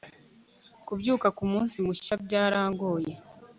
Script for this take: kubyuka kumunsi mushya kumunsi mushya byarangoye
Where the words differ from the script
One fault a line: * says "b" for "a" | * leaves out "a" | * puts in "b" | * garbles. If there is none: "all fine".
* leaves out "kumunsi mushya"